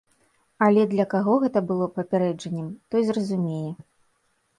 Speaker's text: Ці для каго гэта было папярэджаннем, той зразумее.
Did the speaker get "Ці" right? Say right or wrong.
wrong